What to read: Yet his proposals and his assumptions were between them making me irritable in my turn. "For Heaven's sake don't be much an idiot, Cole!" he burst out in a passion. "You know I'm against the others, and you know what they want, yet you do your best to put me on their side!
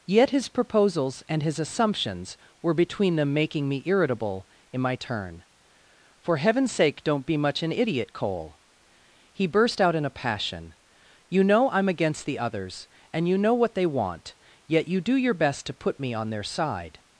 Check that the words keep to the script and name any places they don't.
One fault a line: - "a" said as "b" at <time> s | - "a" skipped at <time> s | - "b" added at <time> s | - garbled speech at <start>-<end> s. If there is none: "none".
none